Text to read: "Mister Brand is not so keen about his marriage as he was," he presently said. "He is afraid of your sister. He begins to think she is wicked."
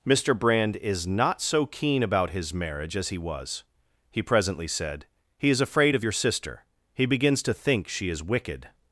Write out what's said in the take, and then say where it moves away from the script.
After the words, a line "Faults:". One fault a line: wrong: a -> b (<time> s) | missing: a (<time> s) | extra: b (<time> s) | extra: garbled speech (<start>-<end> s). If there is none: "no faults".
"Mister Brand is not so keen about his marriage as he was," he presently said. "He is afraid of your sister. He begins to think she is wicked."
Faults:
no faults